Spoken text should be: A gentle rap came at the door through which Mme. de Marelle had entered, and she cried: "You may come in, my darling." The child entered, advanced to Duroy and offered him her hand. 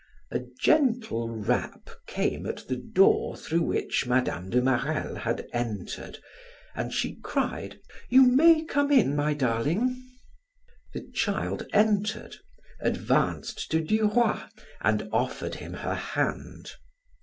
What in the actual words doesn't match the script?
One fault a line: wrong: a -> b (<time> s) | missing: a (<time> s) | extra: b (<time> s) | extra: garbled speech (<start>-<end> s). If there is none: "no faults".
no faults